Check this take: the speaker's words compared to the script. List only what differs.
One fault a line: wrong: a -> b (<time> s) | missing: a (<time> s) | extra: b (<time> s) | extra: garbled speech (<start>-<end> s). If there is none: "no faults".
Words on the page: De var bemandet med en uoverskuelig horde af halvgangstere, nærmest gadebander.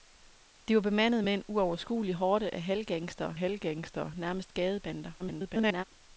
extra: halvgangstere (3.3 s)
extra: garbled speech (5.2-5.8 s)